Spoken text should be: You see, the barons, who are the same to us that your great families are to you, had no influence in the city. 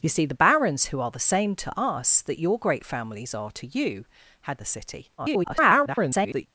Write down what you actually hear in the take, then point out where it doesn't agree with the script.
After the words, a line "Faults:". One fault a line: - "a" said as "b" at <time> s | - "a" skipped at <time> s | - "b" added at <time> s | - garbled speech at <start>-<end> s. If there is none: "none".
You see, the barons, who are the same to us that your great families are to you, had the city. [garbled]
Faults:
- "no influence in" skipped at 4.6 s
- garbled speech at 5.2-6.5 s